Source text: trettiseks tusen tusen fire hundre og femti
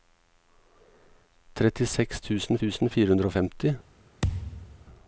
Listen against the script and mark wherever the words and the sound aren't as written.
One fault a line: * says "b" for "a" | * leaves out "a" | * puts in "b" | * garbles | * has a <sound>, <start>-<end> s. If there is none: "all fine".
* has a thud, 4.2-4.9 s